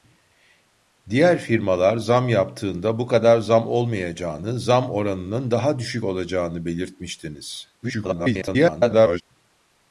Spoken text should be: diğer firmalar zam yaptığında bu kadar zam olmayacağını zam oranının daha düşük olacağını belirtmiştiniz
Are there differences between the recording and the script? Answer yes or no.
yes